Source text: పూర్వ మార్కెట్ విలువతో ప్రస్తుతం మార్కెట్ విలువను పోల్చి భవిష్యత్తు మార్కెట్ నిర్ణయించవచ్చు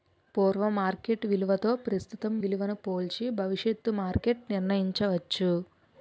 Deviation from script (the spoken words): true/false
true